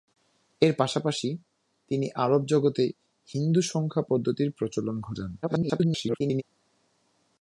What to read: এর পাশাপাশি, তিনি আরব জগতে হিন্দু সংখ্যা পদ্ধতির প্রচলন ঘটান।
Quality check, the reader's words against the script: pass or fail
fail